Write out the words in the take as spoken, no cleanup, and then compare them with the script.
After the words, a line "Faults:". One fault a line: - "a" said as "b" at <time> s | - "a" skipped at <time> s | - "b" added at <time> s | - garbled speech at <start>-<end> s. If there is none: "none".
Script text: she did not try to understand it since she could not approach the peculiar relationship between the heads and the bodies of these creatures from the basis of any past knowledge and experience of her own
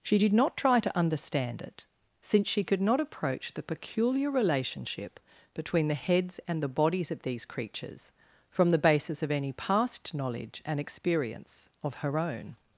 she did not try to understand it since she could not approach the peculiar relationship between the heads and the bodies of these creatures from the basis of any past knowledge and experience of her own
Faults:
none